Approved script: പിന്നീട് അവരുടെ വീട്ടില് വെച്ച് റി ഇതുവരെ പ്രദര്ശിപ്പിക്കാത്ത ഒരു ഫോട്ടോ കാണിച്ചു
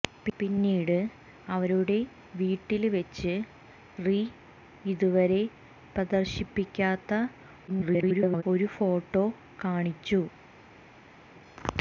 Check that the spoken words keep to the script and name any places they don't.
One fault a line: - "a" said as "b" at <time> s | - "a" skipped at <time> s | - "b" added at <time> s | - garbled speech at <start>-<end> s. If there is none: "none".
- garbled speech at 7.7-8.4 s